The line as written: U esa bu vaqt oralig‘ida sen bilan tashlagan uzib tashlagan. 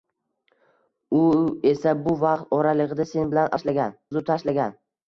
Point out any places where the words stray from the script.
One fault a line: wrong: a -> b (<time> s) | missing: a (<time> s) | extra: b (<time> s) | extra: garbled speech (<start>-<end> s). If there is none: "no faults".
no faults